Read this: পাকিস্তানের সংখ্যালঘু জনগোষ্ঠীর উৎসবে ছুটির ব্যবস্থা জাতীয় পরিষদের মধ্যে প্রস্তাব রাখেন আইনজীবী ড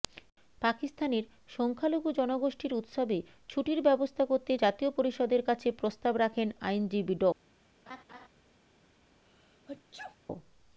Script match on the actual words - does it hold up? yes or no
no